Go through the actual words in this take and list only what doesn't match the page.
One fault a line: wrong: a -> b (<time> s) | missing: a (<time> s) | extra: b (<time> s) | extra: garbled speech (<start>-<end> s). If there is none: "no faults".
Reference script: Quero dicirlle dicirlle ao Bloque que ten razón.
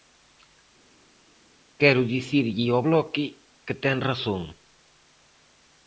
missing: dicirlle (2.7 s)